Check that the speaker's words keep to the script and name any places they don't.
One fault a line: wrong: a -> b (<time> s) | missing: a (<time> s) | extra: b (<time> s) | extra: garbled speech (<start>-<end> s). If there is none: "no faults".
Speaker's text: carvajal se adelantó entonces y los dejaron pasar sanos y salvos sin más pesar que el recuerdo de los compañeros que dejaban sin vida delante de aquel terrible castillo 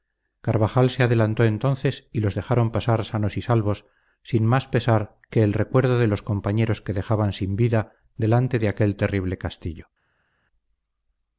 no faults